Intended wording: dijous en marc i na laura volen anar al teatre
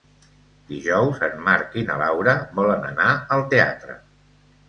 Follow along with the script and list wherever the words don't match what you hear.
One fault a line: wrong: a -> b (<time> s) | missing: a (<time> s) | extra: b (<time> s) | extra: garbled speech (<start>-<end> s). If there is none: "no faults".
no faults